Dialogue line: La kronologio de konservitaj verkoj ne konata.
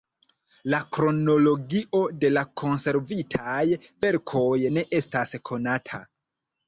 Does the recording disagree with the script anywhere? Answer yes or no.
yes